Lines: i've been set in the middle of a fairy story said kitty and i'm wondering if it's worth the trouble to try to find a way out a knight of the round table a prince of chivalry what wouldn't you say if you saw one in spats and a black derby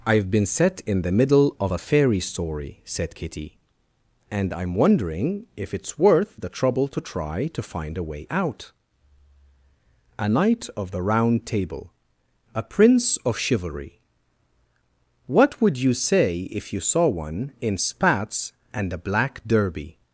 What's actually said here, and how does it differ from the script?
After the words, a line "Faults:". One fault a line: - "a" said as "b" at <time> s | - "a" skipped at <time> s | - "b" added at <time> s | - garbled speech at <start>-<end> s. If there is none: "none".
i've been set in the middle of a fairy story said kitty and i'm wondering if it's worth the trouble to try to find a way out a knight of the round table a prince of chivalry what would you say if you saw one in spats and a black derby
Faults:
- "wouldn't" said as "would" at 15.6 s